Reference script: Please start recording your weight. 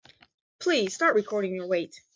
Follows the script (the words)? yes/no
yes